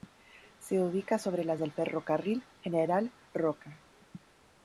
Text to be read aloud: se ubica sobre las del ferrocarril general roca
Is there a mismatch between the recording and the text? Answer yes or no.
no